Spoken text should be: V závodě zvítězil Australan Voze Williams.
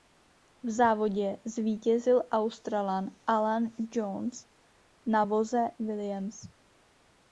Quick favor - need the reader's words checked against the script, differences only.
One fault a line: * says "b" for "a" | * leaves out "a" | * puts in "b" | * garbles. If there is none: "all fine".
* puts in "Alan Jones na"